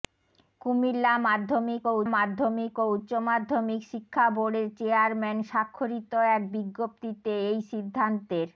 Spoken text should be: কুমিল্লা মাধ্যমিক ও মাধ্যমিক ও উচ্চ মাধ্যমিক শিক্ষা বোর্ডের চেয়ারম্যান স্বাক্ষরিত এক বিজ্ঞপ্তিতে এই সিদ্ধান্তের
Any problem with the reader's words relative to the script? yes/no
no